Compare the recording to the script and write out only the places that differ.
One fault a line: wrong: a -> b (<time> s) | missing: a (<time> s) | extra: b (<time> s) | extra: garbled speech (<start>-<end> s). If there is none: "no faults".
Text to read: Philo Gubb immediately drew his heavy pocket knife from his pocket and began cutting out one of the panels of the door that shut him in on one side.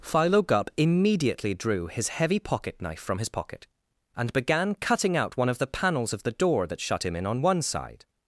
no faults